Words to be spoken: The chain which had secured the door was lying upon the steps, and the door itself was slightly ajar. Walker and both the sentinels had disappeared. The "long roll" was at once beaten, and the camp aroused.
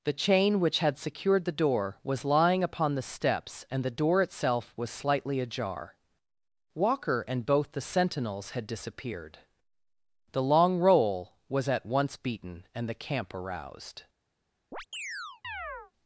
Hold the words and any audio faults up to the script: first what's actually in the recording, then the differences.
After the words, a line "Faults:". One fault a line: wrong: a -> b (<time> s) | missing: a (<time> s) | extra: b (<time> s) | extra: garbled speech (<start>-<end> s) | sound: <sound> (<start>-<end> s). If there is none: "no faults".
The chain which had secured the door was lying upon the steps, and the door itself was slightly ajar. Walker and both the sentinels had disappeared. The "long roll" was at once beaten, and the camp aroused.
Faults:
sound: chirp (14.7-15.9 s)